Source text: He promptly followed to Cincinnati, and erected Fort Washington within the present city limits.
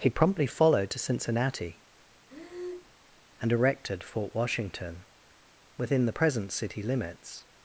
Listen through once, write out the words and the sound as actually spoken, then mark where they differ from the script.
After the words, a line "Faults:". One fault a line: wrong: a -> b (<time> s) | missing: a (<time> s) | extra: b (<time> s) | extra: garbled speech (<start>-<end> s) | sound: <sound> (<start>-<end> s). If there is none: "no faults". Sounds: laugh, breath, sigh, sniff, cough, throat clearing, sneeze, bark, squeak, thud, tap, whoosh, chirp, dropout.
He promptly followed to Cincinnati, and erected Fort Washington within the present city limits.
Faults:
sound: breath (2.3-3.0 s)